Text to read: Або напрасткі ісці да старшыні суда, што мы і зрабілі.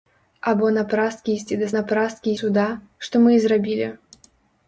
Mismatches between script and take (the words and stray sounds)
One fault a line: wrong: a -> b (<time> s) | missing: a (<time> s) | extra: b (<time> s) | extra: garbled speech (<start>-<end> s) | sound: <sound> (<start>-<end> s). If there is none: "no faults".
wrong: старшыні -> напрасткі (1.8 s)